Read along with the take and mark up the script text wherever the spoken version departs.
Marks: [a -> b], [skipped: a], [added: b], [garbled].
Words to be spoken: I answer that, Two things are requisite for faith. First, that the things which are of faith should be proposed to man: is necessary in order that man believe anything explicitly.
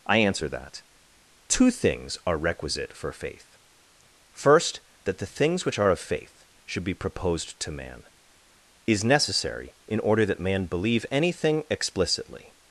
I answer that, Two things are requisite for faith. First, that the things which are of faith should be proposed to man: is necessary in order that man believe anything explicitly.